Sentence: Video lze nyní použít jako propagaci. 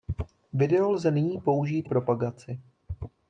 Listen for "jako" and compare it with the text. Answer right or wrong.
wrong